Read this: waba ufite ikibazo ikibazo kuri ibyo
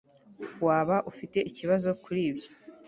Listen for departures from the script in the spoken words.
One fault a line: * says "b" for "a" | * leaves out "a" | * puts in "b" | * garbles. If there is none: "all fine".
* leaves out "ikibazo"